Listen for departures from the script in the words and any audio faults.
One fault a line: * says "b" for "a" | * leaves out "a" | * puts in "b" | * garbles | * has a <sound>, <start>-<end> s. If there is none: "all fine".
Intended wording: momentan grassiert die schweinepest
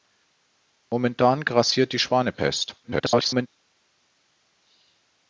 * garbles